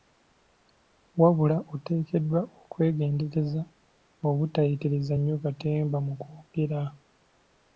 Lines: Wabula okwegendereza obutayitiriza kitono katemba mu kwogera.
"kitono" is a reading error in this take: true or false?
true